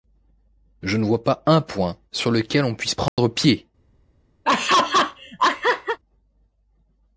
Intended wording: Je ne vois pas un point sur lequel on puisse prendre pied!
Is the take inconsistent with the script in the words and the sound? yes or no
yes